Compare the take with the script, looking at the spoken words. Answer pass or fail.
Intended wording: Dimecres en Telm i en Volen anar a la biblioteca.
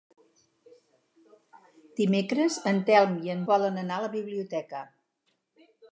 pass